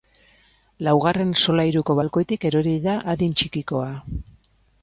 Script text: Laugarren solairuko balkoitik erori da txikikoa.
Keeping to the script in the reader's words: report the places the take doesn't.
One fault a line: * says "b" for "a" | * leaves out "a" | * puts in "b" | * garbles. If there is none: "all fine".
* puts in "adin"